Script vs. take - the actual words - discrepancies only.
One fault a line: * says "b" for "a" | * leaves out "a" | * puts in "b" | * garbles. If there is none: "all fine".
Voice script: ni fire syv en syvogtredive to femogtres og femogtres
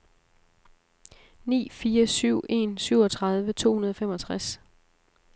* says "hundrede" for "femogtres"